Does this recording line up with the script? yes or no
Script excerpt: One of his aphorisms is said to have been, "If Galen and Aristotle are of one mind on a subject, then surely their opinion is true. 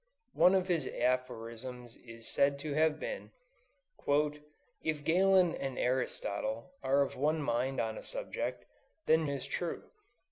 no